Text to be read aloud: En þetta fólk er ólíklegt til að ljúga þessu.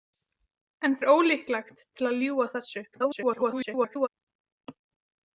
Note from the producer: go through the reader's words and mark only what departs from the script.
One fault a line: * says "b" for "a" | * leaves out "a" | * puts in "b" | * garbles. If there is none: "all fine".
* leaves out "þetta fólk"
* garbles